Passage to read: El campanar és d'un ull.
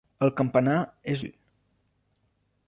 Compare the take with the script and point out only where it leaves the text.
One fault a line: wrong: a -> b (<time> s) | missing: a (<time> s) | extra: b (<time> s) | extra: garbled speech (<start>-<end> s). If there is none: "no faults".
missing: d'un (1.2 s)